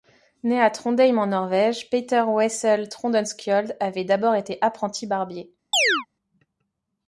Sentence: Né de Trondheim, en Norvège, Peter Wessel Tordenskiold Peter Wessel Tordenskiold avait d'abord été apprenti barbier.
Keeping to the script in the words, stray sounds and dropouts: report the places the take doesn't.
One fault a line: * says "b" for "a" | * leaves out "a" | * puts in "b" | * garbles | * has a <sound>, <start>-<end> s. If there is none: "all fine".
* says "à" for "de"
* leaves out "Peter Wessel Tordenskiold"
* has a chirp, 5.7-6.1 s